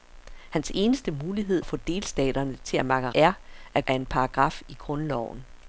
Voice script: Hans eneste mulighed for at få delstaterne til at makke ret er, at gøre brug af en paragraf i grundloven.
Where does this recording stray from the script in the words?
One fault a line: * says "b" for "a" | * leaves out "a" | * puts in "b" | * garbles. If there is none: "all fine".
* leaves out "for"
* leaves out "ret"
* leaves out "gøre brug"